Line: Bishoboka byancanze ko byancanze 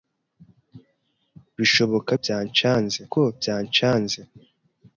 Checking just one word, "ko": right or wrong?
right